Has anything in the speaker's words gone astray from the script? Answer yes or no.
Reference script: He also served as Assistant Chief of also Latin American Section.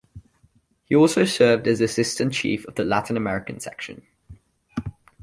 yes